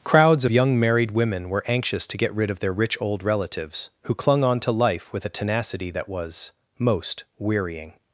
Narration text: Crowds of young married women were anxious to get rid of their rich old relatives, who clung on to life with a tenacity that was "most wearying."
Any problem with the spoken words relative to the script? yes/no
yes